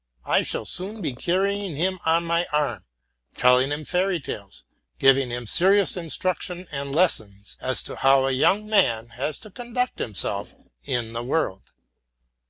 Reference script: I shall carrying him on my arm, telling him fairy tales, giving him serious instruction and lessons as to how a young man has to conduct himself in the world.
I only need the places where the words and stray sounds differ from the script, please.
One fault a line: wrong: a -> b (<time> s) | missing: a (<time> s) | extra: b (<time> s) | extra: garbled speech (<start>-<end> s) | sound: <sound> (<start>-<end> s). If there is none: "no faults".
extra: soon be (0.7 s)